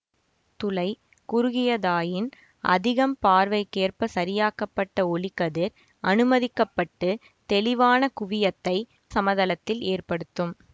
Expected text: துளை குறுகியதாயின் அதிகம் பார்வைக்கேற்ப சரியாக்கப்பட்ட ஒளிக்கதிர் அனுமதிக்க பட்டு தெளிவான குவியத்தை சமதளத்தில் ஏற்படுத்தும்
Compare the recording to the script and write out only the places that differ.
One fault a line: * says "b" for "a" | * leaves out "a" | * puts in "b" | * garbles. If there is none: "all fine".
all fine